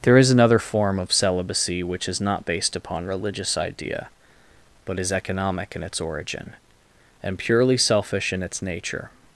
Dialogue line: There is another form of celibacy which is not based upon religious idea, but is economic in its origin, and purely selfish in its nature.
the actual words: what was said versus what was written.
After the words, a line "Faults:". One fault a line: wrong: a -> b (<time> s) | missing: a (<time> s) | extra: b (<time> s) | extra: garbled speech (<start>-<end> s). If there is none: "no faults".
There is another form of celibacy which is not based upon religious idea, but is economic in its origin, and purely selfish in its nature.
Faults:
no faults